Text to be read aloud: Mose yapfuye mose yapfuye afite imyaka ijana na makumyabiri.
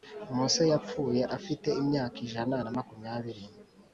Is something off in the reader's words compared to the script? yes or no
yes